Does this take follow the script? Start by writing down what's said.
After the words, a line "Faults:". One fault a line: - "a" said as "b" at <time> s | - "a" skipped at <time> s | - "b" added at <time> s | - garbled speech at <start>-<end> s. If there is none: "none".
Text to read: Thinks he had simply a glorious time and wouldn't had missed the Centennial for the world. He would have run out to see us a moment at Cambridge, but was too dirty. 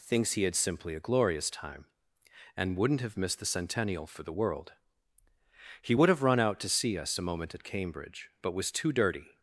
Thinks he had simply a glorious time and wouldn't have missed the Centennial for the world. He would have run out to see us a moment at Cambridge, but was too dirty.
Faults:
- "had" said as "have" at 3.0 s